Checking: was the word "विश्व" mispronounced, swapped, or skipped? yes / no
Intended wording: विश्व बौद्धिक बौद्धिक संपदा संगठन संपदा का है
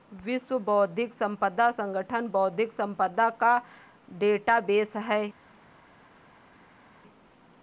no